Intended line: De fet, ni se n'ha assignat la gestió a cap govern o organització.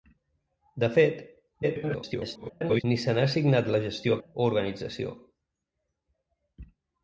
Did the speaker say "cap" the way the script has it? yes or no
no